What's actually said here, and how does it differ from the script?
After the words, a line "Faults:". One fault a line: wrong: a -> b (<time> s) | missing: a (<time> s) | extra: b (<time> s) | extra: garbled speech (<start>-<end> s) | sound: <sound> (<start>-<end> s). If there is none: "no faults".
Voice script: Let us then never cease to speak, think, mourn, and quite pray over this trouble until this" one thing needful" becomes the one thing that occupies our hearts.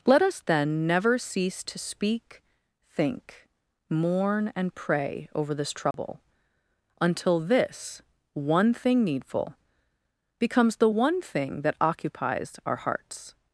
Let us then never cease to speak, think, mourn, and pray over this trouble until this" one thing needful" becomes the one thing that occupies our hearts.
Faults:
missing: quite (4.7 s)
sound: dropout (5.9-5.9 s)